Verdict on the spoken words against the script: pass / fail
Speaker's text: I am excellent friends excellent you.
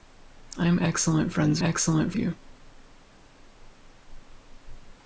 pass